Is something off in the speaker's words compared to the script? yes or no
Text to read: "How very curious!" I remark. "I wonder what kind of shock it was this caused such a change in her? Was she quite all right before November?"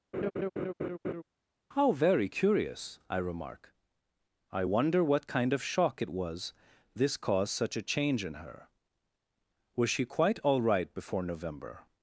no